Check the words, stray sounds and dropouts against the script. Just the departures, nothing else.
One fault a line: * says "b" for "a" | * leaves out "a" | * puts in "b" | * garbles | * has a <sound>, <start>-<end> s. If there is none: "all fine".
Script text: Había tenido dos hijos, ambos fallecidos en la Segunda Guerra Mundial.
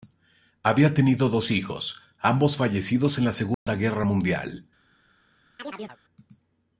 * has a dropout, 3.5-3.7 s
* has a chirp, 5.6-6.0 s